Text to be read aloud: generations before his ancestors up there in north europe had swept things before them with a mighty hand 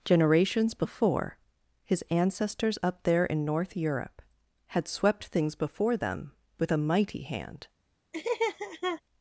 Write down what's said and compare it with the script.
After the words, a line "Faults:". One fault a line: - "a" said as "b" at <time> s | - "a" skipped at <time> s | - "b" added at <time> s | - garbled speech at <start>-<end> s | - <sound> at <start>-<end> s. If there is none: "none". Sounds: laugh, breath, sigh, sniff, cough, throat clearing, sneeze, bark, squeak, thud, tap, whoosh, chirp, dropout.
generations before his ancestors up there in north europe had swept things before them with a mighty hand
Faults:
- laugh at 8.1-9.0 s